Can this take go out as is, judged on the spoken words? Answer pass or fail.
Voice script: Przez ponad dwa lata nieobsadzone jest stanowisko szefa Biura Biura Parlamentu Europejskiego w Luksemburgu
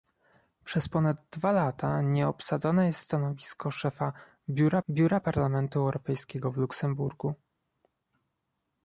pass